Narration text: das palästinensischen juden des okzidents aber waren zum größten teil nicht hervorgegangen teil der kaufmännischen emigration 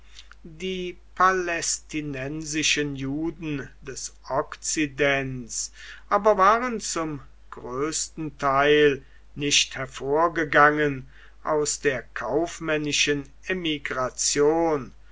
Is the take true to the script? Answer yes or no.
no